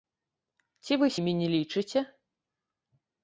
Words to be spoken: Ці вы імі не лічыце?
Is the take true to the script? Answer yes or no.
yes